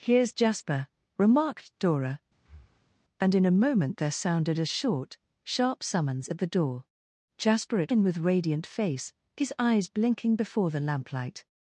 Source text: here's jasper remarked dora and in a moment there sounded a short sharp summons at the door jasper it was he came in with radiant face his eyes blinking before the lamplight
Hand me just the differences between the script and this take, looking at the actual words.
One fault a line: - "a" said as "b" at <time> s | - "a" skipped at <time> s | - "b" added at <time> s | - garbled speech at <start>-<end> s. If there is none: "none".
- "was he came" skipped at 7.9 s